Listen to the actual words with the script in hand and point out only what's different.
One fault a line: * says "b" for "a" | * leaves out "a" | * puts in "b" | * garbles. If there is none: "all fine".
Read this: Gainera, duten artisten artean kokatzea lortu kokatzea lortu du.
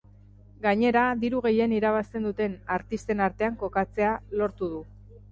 * puts in "diru gehien irabazten"
* leaves out "kokatzea lortu"